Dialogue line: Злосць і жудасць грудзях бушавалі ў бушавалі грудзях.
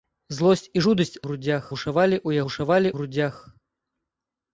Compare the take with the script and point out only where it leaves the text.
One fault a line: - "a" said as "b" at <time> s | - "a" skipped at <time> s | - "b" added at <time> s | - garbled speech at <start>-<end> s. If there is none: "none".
none